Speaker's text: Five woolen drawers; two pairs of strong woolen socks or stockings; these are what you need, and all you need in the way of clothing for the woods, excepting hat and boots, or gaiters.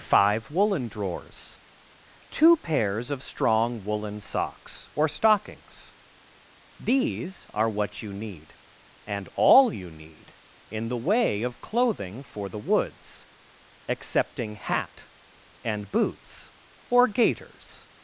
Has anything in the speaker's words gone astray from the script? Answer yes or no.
no